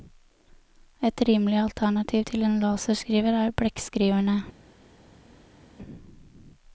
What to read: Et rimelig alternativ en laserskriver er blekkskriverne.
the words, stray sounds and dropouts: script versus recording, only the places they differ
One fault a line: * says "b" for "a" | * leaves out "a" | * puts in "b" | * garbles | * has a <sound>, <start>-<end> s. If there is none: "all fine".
* puts in "til"